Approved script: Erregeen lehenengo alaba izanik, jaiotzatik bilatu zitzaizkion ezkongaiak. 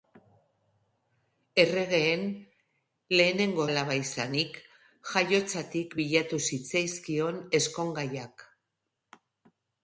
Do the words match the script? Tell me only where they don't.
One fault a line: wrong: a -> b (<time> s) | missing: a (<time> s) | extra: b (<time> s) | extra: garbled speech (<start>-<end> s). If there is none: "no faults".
no faults